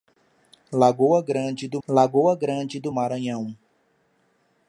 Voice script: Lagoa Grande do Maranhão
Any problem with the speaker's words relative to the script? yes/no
yes